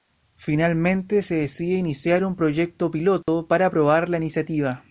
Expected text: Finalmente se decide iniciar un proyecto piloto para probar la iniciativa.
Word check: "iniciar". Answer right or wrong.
right